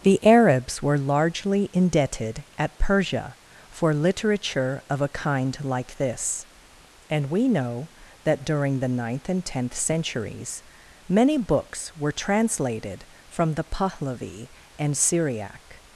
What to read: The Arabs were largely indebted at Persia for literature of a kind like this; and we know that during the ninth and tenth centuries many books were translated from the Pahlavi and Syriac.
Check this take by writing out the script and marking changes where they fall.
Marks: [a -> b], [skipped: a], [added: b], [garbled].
The Arabs were largely indebted at Persia for literature of a kind like this; and we know that during the ninth and tenth centuries many books were translated from the Pahlavi and Syriac.